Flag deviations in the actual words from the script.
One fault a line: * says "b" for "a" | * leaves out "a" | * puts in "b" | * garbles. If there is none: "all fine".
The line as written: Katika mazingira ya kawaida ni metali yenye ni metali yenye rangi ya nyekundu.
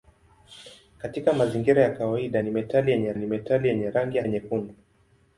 all fine